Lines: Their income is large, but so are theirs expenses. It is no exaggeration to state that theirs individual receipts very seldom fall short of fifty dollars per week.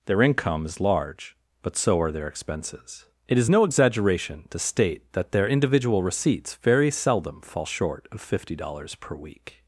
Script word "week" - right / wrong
right